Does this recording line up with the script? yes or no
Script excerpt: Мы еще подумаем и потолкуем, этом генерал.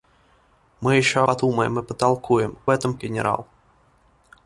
yes